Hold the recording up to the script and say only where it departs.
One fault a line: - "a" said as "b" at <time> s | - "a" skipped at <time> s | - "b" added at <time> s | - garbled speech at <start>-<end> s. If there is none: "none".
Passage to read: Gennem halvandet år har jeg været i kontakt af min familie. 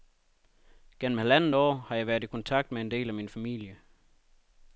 - "med en del" added at 2.7 s